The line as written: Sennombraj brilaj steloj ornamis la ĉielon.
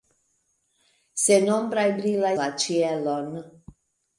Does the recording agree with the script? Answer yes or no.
no